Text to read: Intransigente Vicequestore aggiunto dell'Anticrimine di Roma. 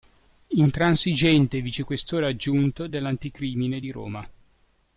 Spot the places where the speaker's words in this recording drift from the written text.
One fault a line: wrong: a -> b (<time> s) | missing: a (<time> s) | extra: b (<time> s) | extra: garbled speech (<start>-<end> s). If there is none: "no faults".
no faults